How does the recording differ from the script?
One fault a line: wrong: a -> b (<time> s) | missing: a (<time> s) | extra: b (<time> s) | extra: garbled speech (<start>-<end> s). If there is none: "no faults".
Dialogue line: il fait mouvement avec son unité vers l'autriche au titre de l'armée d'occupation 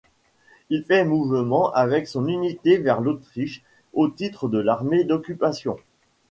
no faults